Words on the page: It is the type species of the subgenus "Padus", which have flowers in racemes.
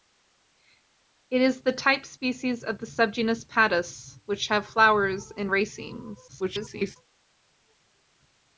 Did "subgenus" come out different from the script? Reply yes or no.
no